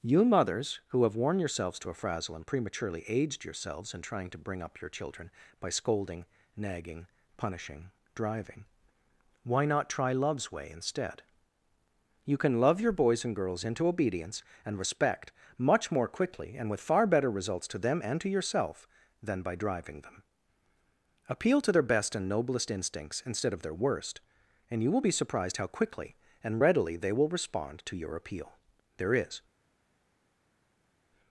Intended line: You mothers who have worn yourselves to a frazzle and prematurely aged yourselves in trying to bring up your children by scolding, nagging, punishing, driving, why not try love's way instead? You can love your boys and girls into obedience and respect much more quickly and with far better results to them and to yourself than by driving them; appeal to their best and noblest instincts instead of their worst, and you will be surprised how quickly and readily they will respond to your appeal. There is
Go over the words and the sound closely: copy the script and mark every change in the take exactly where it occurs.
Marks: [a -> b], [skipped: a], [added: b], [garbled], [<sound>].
You mothers who have worn yourselves to a frazzle and prematurely aged yourselves in trying to bring up your children by scolding, nagging, punishing, driving, why not try love's way instead? You can love your boys and girls into obedience and respect much more quickly and with far better results to them and to yourself than by driving them; appeal to their best and noblest instincts instead of their worst, and you will be surprised how quickly and readily they will respond to your appeal. There is